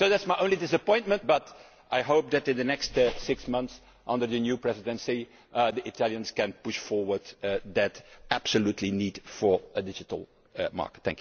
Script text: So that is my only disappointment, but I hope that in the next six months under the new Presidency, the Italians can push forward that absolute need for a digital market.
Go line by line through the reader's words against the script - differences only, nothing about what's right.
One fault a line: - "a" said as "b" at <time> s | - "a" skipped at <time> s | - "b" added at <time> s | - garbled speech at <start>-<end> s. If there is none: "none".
none